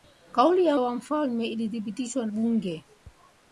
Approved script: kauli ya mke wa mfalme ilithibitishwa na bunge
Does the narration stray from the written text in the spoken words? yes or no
yes